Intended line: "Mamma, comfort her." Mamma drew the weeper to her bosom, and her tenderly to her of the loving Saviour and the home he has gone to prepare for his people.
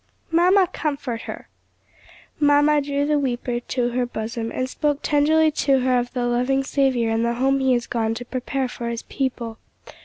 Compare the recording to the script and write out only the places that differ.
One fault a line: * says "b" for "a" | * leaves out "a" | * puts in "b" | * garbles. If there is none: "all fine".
* says "spoke" for "her"